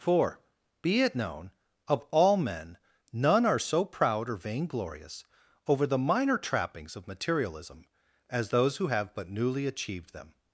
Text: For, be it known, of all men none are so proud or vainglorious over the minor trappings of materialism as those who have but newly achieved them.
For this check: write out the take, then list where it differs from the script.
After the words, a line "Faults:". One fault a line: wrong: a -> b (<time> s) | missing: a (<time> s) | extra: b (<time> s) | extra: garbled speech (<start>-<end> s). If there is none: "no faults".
For, be it known, of all men none are so proud or vainglorious over the minor trappings of materialism as those who have but newly achieved them.
Faults:
no faults